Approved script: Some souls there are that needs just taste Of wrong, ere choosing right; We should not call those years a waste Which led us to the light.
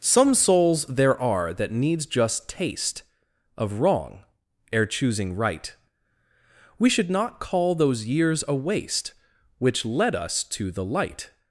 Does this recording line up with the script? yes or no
yes